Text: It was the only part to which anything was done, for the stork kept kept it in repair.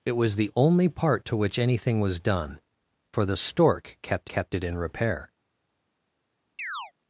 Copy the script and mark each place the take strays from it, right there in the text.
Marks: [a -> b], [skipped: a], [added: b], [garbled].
It was the only part to which anything was done, for the stork kept kept it in repair.